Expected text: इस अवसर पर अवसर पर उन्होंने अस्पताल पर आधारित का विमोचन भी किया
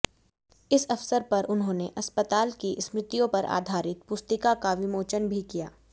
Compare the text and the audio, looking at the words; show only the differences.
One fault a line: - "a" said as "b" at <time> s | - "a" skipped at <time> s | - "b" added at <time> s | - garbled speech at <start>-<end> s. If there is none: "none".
- "अवसर पर उन्होंने अस्पताल" said as "उन्होंने अस्पताल की स्मृतियों" at 1.5 s
- "पुस्तिका" added at 4.1 s